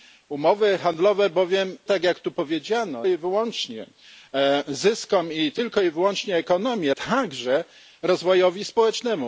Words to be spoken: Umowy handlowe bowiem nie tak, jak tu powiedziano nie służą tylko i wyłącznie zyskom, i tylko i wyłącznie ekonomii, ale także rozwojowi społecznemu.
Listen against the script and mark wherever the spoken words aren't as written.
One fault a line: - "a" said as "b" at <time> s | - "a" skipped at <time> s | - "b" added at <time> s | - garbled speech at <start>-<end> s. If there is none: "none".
- "nie" skipped at 1.8 s
- "nie służą tylko" skipped at 3.1 s
- "ale" skipped at 6.9 s